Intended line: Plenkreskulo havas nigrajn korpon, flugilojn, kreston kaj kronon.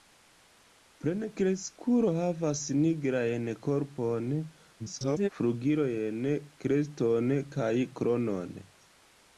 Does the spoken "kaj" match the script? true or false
true